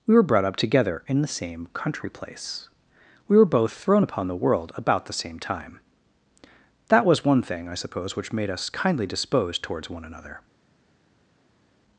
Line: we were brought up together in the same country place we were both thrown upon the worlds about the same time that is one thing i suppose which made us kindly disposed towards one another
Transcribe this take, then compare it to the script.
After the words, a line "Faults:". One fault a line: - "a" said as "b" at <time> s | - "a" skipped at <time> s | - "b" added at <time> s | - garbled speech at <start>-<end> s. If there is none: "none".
we were brought up together in the same country place we were both thrown upon the world about the same time that was one thing i suppose which made us kindly disposed towards one another
Faults:
- "worlds" said as "world" at 4.4 s
- "is" said as "was" at 7.0 s